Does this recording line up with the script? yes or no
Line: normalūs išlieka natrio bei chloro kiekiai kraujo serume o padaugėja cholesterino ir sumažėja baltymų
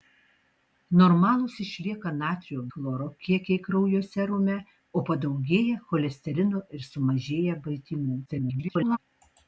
no